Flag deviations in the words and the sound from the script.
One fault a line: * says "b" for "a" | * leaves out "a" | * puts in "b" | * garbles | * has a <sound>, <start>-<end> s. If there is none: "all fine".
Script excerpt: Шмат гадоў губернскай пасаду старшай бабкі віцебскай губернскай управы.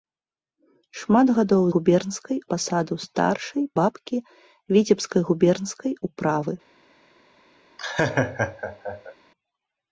* has a laugh, 7.8-9.2 s